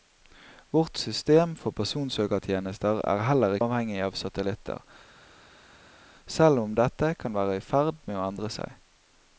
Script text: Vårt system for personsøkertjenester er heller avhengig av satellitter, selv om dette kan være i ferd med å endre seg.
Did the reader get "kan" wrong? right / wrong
right